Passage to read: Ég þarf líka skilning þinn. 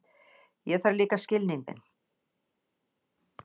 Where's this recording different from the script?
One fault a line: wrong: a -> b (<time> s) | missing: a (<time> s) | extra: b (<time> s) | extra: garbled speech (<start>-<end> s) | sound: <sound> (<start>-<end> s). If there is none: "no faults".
no faults